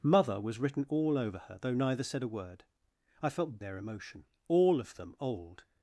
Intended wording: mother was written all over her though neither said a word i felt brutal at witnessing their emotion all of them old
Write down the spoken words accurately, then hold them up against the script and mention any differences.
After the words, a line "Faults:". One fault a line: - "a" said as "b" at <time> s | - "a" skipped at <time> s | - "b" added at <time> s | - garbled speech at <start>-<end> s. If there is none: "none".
mother was written all over her though neither said a word i felt their emotion all of them old
Faults:
- "brutal at witnessing" skipped at 3.6 s